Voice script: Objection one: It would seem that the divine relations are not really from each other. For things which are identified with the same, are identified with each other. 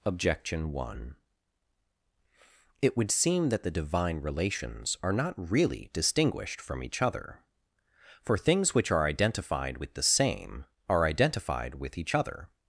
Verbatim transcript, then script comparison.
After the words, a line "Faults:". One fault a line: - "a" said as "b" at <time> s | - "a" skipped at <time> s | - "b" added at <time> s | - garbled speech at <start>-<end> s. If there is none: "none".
Objection one: It would seem that the divine relations are not really distinguished from each other. For things which are identified with the same, are identified with each other.
Faults:
- "distinguished" added at 5.9 s